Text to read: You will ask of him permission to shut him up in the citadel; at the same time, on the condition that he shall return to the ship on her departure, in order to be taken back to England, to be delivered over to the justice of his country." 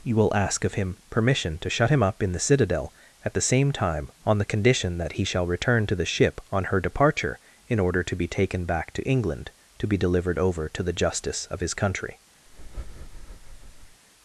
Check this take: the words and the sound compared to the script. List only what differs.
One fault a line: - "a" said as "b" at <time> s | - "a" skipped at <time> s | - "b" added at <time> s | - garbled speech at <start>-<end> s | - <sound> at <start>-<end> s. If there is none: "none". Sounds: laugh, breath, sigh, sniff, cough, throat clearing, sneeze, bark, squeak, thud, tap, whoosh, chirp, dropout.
- breath at 12.5-14.0 s